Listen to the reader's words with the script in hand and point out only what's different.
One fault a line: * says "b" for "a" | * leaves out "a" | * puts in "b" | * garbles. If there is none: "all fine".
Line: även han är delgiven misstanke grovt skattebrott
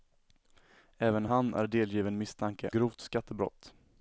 all fine